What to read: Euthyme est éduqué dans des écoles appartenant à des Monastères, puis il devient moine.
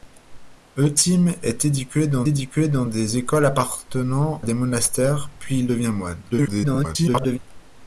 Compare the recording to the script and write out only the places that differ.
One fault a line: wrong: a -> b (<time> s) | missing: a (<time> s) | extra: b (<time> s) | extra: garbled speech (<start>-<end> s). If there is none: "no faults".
extra: éduqué dans (2.2 s)
missing: à (4.4 s)
extra: garbled speech (6.3-7.4 s)